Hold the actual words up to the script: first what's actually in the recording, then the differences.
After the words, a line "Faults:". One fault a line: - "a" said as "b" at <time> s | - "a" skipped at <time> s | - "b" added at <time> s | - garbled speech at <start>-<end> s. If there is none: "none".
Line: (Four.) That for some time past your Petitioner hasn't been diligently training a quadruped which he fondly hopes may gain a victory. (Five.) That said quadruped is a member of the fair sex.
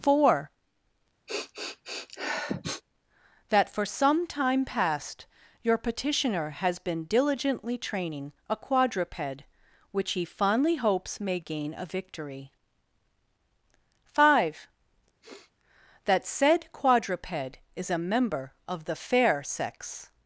(Four.) That for some time past your Petitioner has been diligently training a quadruped which he fondly hopes may gain a victory. (Five.) That said quadruped is a member of the fair sex.
Faults:
- "hasn't" said as "has" at 6.5 s